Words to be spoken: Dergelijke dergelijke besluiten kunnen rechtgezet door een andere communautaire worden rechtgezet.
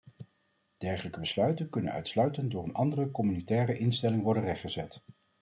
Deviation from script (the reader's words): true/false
true